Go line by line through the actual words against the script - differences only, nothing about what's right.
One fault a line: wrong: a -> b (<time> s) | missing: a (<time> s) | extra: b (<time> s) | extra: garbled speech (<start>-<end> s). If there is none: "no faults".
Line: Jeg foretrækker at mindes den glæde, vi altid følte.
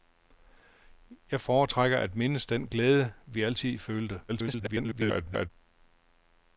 extra: garbled speech (4.3-5.5 s)